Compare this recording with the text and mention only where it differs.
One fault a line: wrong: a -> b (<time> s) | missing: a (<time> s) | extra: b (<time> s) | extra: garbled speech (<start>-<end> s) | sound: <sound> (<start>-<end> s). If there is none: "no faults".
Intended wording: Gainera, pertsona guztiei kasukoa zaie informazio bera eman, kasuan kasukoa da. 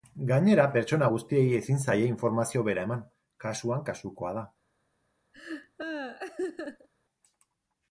wrong: kasukoa -> ezin (1.6 s)
sound: laugh (5.3-6.9 s)